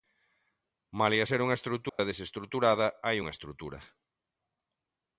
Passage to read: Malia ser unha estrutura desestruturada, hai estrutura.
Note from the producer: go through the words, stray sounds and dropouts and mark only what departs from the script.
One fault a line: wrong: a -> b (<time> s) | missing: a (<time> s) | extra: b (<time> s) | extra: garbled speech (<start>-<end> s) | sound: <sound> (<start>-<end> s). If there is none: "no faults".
sound: dropout (1.9-2.0 s)
extra: unha (3.2 s)